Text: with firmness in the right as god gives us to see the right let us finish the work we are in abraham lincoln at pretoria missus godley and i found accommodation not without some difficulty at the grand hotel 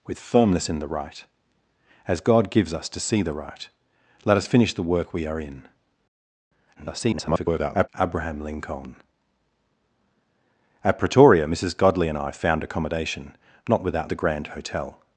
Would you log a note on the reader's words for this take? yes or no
yes